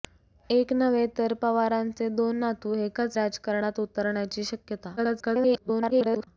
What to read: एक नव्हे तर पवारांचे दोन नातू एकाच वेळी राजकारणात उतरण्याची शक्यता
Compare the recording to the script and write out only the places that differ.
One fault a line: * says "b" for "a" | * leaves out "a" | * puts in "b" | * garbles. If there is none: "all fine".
* leaves out "वेळी"
* garbles